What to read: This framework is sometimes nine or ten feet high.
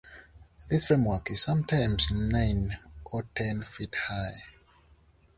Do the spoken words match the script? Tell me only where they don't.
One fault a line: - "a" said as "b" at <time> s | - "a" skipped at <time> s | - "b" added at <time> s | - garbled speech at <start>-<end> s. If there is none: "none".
none